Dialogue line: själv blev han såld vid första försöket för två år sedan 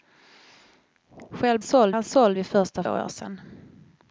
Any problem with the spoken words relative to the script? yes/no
yes